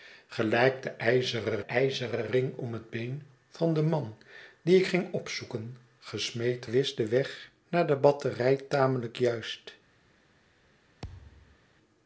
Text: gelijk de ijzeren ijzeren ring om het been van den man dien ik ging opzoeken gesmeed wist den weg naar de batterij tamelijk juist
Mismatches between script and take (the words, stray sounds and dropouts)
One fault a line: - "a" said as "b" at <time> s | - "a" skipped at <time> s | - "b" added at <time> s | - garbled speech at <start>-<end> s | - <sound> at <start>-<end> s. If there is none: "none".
- thud at 11.0-11.6 s